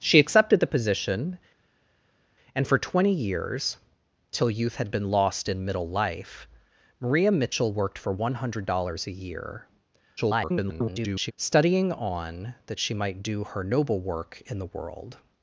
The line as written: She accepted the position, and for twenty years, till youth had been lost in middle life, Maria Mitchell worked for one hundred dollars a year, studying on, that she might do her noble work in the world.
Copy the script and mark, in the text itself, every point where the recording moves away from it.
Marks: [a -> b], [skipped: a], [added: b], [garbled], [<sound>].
She accepted the position, and for twenty years, till youth had been lost in middle life, Maria Mitchell worked for one hundred dollars a year, [garbled] studying on, that she might do her noble work in the world.